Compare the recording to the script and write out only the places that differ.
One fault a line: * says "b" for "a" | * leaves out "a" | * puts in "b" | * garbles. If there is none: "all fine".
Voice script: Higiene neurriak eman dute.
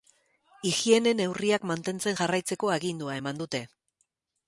* puts in "mantentzen jarraitzeko agindua"